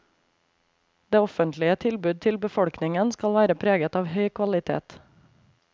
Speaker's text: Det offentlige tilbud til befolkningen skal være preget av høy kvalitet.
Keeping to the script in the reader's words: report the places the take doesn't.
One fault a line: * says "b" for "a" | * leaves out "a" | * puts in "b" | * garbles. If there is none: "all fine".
all fine